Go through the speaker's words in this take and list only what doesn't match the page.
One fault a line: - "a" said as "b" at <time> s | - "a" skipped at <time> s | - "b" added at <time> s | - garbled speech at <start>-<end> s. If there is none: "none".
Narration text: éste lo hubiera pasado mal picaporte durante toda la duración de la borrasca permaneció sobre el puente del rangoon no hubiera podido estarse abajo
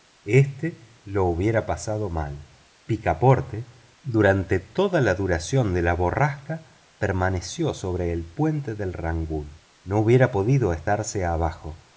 none